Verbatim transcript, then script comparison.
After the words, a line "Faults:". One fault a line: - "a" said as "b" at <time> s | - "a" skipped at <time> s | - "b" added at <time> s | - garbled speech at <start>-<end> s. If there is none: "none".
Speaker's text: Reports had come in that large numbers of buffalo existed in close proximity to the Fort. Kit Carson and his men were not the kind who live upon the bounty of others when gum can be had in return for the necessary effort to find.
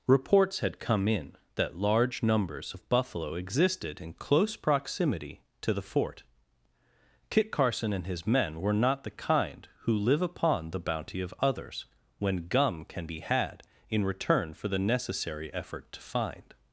Reports had come in that large numbers of buffalo existed in close proximity to the Fort. Kit Carson and his men were not the kind who live upon the bounty of others when gum can be had in return for the necessary effort to find.
Faults:
none